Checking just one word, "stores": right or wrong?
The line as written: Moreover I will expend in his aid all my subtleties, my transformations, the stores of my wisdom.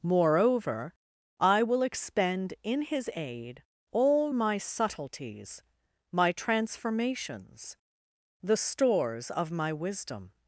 right